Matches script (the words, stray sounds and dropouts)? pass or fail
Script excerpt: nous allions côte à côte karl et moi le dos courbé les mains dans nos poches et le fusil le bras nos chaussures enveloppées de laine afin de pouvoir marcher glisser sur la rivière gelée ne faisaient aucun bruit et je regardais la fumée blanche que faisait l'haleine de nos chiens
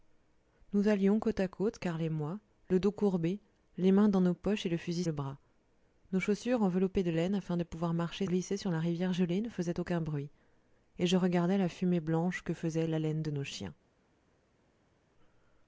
pass